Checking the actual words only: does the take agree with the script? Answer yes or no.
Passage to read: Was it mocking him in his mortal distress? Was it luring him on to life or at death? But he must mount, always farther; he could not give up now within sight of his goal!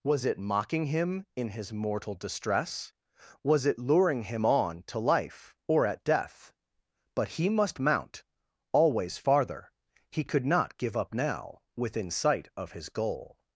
yes